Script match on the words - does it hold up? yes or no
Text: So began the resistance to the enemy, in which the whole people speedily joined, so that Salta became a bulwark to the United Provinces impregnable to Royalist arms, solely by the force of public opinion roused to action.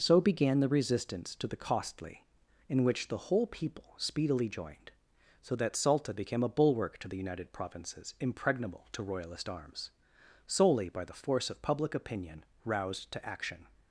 no